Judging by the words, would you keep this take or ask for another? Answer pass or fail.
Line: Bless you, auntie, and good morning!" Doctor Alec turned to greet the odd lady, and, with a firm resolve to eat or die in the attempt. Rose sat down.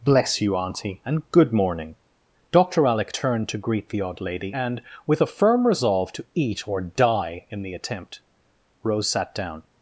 pass